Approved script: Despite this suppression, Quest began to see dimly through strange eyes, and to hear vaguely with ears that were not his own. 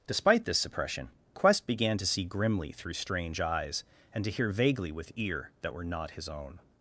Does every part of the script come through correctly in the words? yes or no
no